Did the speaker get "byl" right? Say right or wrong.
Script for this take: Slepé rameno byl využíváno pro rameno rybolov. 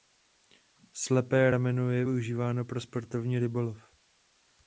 wrong